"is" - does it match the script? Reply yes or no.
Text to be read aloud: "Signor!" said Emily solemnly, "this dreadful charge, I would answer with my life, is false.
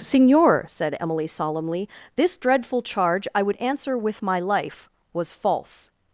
no